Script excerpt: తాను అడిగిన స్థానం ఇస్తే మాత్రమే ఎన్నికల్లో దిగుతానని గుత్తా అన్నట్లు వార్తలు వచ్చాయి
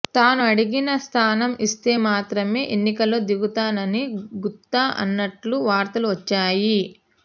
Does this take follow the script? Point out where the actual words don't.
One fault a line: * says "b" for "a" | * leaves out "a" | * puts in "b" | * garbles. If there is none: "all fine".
all fine